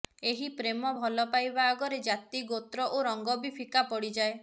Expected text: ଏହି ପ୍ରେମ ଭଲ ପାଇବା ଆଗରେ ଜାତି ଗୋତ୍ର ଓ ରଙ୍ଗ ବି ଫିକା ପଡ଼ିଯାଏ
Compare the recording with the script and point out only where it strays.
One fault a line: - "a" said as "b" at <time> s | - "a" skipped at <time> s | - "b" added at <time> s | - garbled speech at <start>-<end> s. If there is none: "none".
none